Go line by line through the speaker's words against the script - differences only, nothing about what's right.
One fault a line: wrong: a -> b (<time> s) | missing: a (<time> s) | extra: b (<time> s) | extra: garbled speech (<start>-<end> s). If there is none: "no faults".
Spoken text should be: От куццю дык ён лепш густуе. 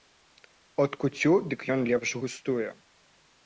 no faults